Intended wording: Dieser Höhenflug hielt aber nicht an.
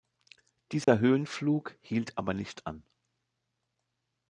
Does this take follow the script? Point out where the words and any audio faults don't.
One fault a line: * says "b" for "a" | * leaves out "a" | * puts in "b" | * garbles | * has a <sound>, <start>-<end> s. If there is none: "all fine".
* has a dropout, 0.8-0.9 s